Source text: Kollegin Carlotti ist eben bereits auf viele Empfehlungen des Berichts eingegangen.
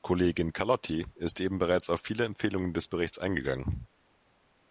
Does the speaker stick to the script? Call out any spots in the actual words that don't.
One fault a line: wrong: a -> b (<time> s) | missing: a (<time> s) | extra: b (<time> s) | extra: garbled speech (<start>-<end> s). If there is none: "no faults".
no faults